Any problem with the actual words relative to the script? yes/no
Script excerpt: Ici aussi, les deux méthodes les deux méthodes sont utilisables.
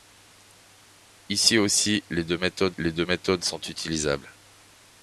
no